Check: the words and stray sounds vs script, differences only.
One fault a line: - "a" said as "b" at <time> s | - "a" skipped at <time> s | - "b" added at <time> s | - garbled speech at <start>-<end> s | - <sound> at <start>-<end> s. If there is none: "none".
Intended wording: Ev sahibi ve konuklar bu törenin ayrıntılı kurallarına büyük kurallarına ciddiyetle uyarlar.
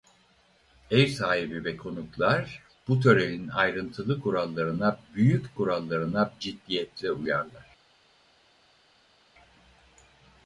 none